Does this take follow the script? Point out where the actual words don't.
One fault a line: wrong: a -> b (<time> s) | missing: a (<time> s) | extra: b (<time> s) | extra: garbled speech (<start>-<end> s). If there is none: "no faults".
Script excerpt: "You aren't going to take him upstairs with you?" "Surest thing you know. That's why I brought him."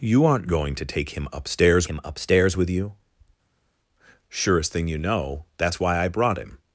extra: him upstairs (1.8 s)